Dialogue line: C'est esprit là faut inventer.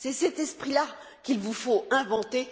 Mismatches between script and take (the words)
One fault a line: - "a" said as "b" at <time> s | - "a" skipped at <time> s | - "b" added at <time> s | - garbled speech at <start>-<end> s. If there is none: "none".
- "cet" added at 0.1 s
- "qu'il vous" added at 1.2 s